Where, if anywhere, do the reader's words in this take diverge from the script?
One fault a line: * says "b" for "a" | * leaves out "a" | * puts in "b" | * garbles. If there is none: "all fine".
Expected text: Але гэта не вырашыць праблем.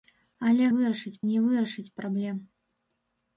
* says "вырашыць" for "гэта"